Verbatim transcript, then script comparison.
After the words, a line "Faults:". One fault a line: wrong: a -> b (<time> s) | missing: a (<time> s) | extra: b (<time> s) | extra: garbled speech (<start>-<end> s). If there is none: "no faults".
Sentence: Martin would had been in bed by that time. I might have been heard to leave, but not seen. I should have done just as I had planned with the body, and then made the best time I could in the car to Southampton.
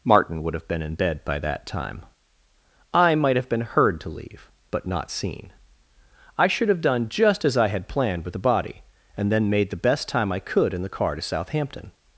Martin would have been in bed by that time. I might have been heard to leave, but not seen. I should have done just as I had planned with the body, and then made the best time I could in the car to Southampton.
Faults:
wrong: had -> have (0.5 s)